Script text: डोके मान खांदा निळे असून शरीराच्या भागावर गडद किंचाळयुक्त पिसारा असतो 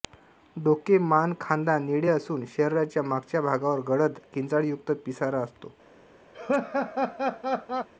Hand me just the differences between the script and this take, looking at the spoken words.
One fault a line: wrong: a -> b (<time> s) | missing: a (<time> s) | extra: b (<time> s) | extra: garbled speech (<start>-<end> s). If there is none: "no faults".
extra: मागच्या (3.0 s)